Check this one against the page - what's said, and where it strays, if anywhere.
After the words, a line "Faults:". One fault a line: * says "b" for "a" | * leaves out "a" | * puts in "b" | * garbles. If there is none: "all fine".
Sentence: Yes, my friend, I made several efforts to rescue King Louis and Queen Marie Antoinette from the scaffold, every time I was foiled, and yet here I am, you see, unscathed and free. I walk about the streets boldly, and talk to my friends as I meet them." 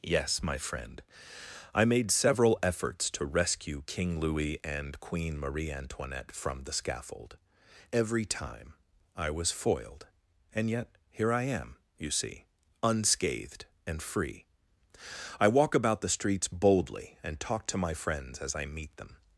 Yes, my friend, I made several efforts to rescue King Louis and Queen Marie Antoinette from the scaffold, every time I was foiled, and yet here I am, you see, unscathed and free. I walk about the streets boldly, and talk to my friends as I meet them."
Faults:
all fine